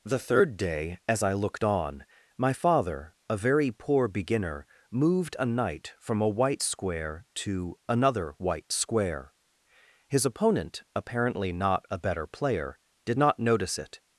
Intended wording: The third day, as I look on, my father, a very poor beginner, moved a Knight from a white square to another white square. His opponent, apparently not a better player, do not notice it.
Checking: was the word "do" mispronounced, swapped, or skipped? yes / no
yes